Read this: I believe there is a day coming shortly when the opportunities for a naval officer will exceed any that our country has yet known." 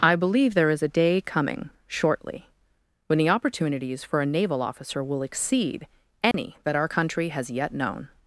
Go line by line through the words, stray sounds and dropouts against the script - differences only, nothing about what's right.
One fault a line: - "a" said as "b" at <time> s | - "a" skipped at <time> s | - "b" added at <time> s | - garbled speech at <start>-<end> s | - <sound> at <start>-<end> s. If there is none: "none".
- dropout at 6.3-6.3 s